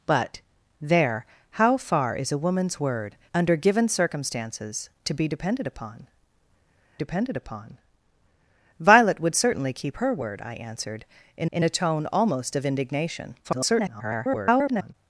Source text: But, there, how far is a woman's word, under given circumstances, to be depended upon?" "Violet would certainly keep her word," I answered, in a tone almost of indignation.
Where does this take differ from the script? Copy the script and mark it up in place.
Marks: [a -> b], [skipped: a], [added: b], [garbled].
But, there, how far is a woman's word, under given circumstances, to be depended upon?" [added: depended upon] "Violet would certainly keep her word," I answered, in [added: in] a tone almost of indignation. [garbled]